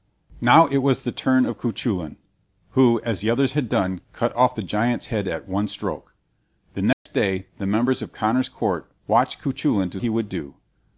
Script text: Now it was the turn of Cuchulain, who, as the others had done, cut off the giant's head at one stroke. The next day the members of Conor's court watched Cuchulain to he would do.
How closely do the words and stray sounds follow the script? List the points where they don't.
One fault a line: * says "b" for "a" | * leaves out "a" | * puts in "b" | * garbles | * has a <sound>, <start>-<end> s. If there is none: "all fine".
* has a dropout, 6.9-7.1 s